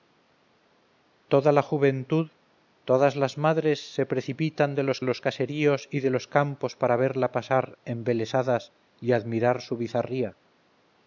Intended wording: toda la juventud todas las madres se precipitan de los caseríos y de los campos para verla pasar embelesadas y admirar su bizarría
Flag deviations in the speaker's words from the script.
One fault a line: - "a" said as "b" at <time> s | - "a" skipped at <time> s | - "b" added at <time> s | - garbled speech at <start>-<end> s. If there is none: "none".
- "los" added at 5.0 s